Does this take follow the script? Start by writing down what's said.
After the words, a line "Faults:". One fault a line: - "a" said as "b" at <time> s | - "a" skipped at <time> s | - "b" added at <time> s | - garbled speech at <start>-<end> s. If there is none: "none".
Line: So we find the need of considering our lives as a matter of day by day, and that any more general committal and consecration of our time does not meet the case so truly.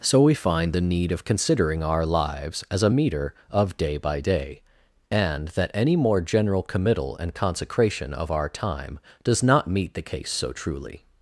So we find the need of considering our lives as a meter of day by day, and that any more general committal and consecration of our time does not meet the case so truly.
Faults:
- "matter" said as "meter" at 2.9 s